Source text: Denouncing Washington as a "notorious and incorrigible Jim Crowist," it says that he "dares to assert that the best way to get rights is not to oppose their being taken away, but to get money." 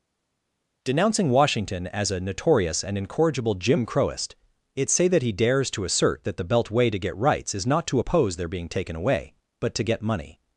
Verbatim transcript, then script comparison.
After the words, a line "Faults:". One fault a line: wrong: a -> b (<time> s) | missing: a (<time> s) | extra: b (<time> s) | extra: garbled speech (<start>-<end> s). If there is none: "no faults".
Denouncing Washington as a "notorious and incorrigible Jim Crowist," it say that he "dares to assert that the belt way to get rights is not to oppose their being taken away, but to get money."
Faults:
wrong: says -> say (4.9 s)
wrong: best -> belt (6.4 s)